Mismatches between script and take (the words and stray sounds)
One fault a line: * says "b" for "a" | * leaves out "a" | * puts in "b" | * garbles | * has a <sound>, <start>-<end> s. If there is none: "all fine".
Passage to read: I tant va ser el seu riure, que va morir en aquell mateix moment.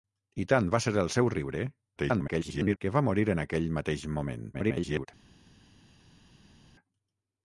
* garbles
* garbles